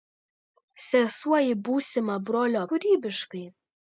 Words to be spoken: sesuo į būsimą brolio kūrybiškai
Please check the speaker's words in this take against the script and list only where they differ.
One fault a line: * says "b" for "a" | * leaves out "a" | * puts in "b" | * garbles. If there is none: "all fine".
all fine